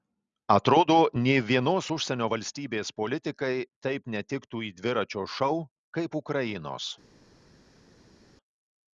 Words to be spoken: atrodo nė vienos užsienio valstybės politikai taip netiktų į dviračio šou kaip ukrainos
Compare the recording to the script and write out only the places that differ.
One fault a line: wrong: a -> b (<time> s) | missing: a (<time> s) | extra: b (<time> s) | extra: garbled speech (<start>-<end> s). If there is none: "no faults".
no faults